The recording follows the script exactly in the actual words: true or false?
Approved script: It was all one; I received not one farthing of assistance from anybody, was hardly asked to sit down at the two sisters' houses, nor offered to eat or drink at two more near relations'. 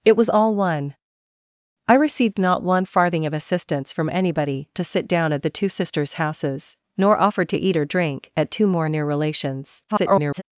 false